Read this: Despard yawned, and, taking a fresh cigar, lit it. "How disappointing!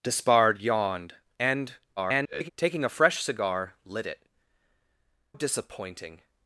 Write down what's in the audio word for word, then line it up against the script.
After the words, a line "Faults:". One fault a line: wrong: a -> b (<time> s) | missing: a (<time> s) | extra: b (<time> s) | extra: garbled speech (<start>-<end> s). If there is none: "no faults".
Despard yawned, and, [garbled] taking a fresh cigar, lit it. "Disappointing!
Faults:
extra: garbled speech (2.0-2.5 s)
missing: How (4.2 s)